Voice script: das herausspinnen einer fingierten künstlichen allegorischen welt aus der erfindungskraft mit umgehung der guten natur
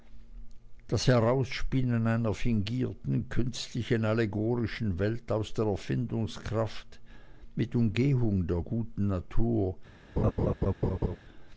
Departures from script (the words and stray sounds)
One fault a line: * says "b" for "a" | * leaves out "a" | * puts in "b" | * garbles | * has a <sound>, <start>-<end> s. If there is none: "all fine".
* has a laugh, 10.2-11.2 s